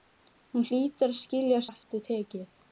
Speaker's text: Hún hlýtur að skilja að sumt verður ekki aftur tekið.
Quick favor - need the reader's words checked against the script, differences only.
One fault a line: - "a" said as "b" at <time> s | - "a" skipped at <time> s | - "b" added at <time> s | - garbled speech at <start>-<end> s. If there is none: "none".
- "sumt verður ekki" skipped at 1.6 s